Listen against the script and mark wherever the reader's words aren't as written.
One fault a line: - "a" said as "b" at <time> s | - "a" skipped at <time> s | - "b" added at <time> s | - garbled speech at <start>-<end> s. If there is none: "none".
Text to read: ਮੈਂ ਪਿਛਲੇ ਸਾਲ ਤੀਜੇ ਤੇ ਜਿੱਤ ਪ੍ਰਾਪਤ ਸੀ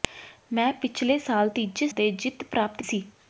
none